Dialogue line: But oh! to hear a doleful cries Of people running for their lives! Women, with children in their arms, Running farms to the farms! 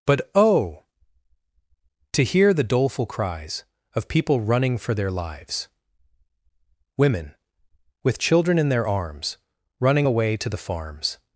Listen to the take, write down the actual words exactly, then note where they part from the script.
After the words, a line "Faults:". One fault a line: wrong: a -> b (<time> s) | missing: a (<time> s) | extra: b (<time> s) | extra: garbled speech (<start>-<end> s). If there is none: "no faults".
But oh! to hear the doleful cries Of people running for their lives! Women, with children in their arms, Running away to the farms!
Faults:
wrong: a -> the (2.5 s)
wrong: farms -> away (10.0 s)